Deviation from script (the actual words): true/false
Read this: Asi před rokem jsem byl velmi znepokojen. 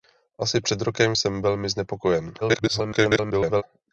true